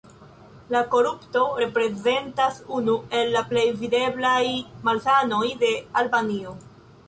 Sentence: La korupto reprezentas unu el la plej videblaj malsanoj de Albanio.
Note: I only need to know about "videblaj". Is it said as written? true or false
true